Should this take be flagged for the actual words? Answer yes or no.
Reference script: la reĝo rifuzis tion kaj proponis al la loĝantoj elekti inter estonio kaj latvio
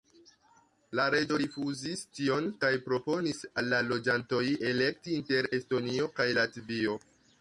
no